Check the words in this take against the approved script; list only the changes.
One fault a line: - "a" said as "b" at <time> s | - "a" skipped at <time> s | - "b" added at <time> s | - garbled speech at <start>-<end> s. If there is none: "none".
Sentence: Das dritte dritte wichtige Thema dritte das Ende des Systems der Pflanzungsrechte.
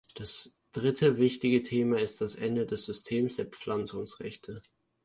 - "dritte" skipped at 1.2 s
- "dritte" said as "ist" at 2.0 s